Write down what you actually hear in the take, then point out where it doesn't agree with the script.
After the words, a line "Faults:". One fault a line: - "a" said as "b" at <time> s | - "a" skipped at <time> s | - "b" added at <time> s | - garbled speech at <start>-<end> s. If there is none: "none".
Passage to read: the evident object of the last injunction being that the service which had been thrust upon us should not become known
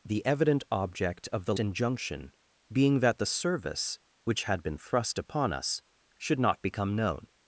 the evident object of the injunction being that the service which had been thrust upon us should not become known
Faults:
- "last" skipped at 1.6 s